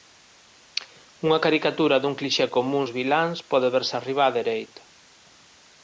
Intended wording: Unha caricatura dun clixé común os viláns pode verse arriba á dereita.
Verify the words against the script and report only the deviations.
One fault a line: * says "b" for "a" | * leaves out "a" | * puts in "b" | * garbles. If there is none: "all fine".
all fine